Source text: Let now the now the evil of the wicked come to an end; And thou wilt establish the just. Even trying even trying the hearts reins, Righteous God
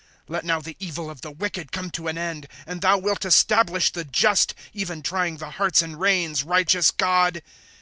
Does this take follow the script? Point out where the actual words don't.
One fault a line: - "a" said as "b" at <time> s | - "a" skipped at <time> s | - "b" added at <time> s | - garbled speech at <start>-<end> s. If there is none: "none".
- "now the" skipped at 0.8 s
- "even trying" skipped at 5.4 s
- "and" added at 5.8 s